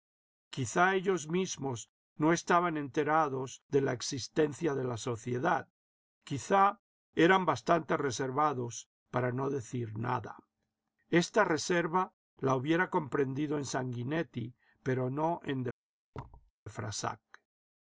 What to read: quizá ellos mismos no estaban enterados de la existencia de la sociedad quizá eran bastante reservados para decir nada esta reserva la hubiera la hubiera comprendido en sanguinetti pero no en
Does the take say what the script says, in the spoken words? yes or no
no